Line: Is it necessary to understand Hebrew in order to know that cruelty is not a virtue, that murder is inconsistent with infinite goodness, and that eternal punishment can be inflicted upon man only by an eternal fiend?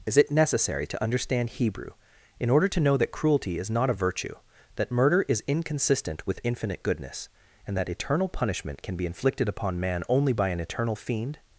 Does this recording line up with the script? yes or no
yes